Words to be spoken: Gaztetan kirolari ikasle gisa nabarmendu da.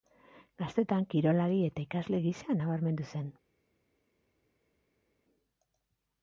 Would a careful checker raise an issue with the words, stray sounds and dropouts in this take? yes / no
yes